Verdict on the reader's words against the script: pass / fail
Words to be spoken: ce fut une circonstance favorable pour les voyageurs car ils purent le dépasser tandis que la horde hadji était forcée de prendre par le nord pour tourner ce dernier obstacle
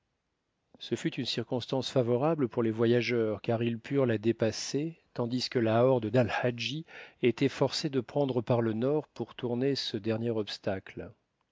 fail